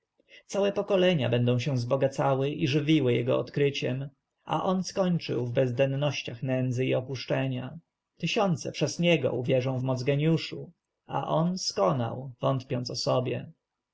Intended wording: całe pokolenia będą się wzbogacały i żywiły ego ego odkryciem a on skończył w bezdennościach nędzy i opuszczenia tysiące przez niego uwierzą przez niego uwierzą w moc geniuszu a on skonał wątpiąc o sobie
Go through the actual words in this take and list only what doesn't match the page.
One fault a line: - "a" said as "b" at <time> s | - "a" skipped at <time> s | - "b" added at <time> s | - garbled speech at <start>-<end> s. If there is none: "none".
- "ego" skipped at 3.4 s
- "przez niego uwierzą" skipped at 9.8 s